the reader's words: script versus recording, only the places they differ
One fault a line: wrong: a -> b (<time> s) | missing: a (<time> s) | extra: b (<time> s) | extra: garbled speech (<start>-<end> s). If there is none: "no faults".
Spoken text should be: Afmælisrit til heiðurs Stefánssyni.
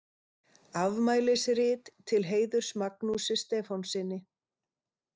extra: Magnúsi (2.8 s)